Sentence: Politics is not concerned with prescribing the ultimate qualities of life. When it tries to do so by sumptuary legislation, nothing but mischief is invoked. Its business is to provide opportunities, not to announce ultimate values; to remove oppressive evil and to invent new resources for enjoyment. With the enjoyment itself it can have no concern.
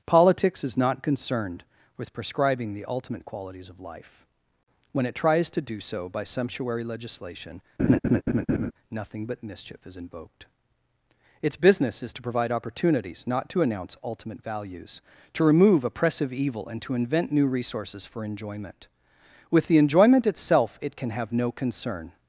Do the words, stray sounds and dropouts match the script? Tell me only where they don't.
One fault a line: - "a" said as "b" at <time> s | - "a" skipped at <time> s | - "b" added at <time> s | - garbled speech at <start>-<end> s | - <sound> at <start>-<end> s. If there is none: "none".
- laugh at 7.8-8.7 s